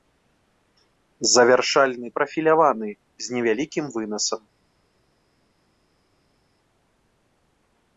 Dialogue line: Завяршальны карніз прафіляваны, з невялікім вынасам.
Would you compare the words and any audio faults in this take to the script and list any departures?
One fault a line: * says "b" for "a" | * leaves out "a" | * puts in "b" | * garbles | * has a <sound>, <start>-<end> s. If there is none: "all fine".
* leaves out "карніз"